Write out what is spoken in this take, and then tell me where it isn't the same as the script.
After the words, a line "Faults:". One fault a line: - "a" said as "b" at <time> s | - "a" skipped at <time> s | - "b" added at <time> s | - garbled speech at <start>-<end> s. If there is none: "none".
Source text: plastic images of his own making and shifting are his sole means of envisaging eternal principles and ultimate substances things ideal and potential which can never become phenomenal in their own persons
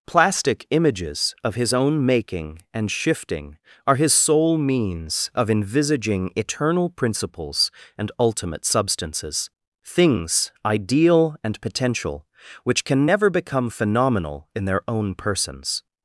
plastic images of his own making and shifting are his sole means of envisaging eternal principles and ultimate substances things ideal and potential which can never become phenomenal in their own persons
Faults:
none